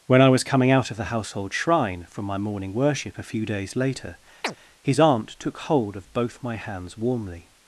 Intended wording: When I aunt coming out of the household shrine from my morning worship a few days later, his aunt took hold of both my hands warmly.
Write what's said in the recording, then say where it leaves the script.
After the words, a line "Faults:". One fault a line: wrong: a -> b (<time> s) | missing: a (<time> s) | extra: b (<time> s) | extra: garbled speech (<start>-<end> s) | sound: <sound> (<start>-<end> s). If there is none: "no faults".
When I was coming out of the household shrine from my morning worship a few days later, his aunt took hold of both my hands warmly.
Faults:
wrong: aunt -> was (0.3 s)
sound: chirp (4.4-4.6 s)